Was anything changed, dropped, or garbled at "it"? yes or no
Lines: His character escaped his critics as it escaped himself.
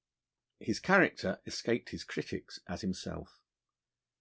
yes